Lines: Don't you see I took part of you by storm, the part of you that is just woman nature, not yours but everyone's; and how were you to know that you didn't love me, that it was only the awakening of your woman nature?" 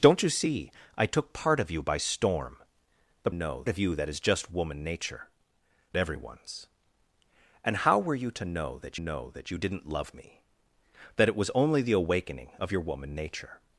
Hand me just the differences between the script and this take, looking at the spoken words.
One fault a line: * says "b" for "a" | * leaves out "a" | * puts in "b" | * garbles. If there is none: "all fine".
* says "know" for "part"
* leaves out "not yours but"
* puts in "know that"